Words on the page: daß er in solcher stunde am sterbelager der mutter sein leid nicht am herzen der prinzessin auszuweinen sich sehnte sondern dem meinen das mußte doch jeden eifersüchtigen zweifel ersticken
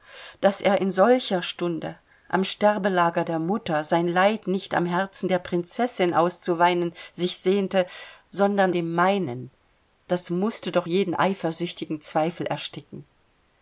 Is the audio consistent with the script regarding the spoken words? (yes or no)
yes